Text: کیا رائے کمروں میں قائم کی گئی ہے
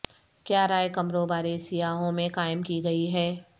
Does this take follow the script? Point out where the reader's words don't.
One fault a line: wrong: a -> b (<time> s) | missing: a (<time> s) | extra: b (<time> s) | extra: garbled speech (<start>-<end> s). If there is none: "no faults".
extra: بارے سیاحوں (1.3 s)